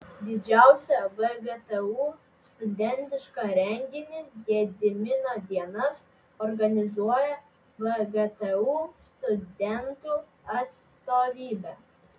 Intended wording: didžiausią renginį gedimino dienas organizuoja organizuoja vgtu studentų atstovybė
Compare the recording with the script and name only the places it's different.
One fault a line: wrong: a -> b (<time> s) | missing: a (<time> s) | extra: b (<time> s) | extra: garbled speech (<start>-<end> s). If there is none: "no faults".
extra: vgtu studentišką (1.2 s)
missing: organizuoja (7.3 s)